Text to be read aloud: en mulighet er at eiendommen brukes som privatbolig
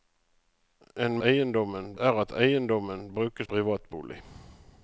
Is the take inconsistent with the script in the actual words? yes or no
yes